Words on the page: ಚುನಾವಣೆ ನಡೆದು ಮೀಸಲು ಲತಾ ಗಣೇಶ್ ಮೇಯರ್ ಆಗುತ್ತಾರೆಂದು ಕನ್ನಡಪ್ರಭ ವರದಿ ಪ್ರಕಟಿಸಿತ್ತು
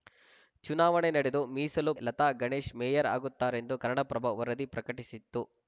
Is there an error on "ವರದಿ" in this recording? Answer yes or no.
no